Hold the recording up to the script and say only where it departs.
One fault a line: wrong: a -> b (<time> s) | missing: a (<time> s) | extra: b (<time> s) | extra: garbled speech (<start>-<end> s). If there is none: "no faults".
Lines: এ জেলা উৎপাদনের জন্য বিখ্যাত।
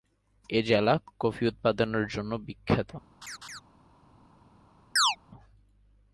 extra: কফি (1.2 s)